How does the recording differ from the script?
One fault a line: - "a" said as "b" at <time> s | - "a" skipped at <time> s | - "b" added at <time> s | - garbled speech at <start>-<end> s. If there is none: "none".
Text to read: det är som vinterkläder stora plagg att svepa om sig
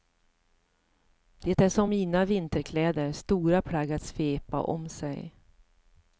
- "mina" added at 1.9 s